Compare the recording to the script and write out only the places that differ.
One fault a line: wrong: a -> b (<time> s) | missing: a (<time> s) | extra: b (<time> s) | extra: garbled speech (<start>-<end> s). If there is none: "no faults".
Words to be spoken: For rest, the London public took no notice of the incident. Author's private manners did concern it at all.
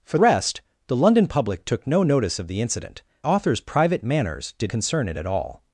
no faults